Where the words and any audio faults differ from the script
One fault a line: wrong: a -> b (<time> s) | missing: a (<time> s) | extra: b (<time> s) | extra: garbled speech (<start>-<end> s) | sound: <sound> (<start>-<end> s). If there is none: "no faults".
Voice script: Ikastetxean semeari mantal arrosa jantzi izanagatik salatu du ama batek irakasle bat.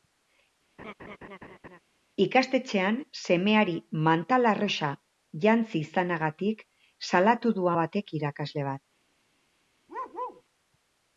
sound: laugh (0.8-1.8 s)
missing: ama (7.7 s)
sound: bark (9.9-10.4 s)